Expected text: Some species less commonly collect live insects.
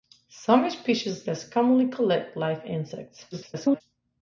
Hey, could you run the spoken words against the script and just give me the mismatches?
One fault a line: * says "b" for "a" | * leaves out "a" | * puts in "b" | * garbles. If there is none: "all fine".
* garbles